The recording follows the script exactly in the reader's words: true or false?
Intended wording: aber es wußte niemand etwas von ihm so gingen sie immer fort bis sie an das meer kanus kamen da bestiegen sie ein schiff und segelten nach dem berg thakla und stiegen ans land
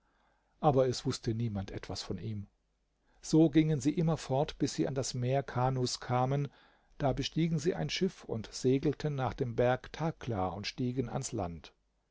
true